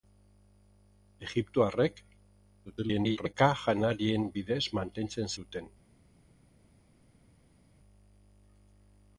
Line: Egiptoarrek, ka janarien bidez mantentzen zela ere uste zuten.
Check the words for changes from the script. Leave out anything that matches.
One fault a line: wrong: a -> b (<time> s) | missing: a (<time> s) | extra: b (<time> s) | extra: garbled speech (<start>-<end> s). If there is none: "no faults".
extra: garbled speech (2.6-3.3 s)
missing: zela ere uste (5.3 s)